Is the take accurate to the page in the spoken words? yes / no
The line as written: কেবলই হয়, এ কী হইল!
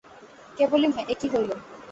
yes